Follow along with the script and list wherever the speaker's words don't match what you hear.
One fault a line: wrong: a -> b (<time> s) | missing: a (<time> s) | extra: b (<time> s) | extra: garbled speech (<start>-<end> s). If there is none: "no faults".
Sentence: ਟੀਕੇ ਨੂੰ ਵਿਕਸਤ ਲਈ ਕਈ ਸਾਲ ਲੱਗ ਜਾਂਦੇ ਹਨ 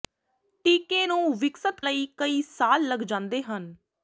no faults